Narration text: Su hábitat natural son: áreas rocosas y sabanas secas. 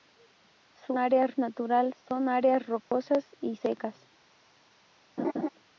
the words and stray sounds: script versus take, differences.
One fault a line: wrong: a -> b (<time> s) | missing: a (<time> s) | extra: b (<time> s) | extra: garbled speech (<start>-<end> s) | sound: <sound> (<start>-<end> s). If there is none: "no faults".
wrong: hábitat -> áreas (1.0 s)
sound: dropout (2.8-2.9 s)
missing: sabanas (3.6 s)
sound: laugh (5.2-5.5 s)